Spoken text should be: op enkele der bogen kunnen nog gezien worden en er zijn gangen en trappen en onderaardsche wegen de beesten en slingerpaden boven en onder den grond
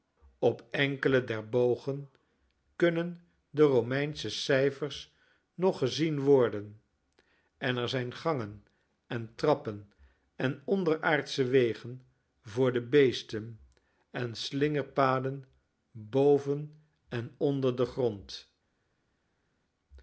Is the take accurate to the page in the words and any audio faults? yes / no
no